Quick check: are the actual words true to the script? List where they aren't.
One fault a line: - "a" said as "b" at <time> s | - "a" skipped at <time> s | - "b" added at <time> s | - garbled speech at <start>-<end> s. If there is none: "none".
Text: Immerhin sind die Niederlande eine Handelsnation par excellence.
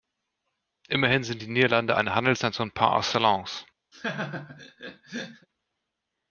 none